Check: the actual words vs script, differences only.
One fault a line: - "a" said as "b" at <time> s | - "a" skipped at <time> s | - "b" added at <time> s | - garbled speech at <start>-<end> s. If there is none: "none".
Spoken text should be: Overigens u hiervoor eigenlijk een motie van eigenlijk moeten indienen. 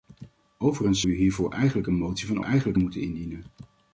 none